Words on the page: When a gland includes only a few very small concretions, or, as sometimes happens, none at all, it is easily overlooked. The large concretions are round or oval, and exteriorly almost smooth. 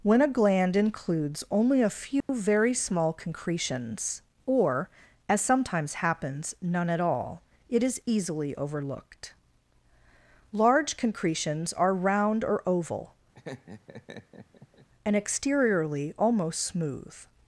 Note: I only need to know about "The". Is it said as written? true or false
false